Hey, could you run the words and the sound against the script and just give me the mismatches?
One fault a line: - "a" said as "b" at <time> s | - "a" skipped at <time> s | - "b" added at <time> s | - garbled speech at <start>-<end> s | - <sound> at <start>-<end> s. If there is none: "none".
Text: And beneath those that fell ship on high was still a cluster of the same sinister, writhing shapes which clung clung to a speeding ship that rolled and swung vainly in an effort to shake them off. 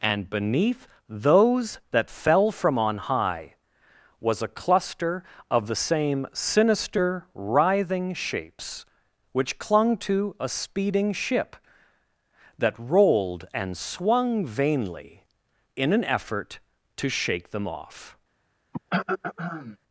- "ship" said as "from" at 2.5 s
- "still" skipped at 4.4 s
- "clung" skipped at 10.0 s
- throat clearing at 18.7-19.8 s